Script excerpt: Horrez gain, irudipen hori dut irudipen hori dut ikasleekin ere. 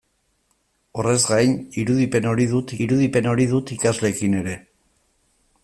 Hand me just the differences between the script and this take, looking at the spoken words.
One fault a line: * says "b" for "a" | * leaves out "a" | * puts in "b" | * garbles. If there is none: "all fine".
all fine